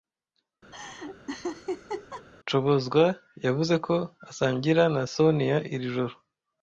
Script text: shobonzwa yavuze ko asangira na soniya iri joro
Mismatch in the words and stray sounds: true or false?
true